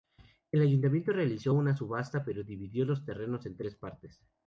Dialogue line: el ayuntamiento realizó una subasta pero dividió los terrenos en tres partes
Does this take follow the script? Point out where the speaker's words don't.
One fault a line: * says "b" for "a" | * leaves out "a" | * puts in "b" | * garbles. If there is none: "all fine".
all fine